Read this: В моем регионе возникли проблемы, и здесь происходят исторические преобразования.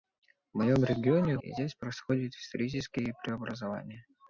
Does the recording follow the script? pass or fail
fail